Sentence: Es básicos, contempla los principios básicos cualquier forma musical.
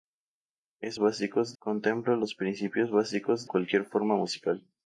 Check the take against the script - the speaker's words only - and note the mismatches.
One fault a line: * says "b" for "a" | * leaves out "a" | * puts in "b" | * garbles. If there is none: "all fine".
all fine